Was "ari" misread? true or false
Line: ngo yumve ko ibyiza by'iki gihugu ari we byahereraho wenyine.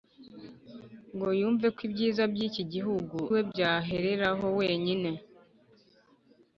true